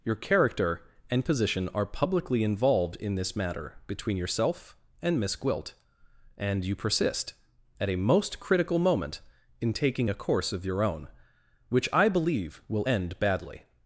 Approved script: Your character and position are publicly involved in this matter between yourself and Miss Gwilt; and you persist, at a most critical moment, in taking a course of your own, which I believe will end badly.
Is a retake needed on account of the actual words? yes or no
no